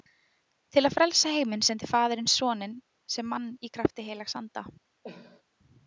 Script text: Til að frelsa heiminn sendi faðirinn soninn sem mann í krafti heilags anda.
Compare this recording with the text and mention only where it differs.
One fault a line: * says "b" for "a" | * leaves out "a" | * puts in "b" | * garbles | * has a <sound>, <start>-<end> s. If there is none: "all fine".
* has a cough, 5.0-5.4 s